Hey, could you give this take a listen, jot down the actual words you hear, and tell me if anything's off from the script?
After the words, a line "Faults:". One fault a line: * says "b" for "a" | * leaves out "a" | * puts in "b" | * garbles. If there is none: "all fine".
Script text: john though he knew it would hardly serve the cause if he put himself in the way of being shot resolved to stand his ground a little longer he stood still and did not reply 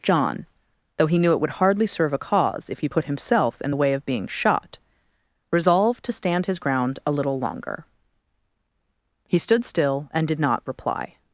john though he knew it would hardly serve a cause if he put himself in the way of being shot resolved to stand his ground a little longer he stood still and did not reply
Faults:
* says "a" for "the"